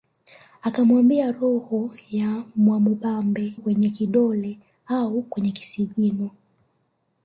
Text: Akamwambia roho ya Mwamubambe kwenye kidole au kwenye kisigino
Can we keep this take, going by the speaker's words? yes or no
yes